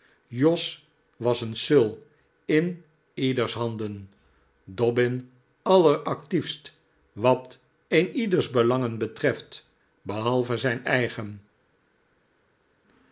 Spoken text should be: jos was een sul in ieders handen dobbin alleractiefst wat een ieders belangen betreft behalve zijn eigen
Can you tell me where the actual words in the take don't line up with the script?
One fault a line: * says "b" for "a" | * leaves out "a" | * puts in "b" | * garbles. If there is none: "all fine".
all fine